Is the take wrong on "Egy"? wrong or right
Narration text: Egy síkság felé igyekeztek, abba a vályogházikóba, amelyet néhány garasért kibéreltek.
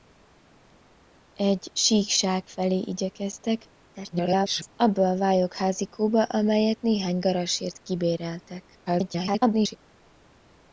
right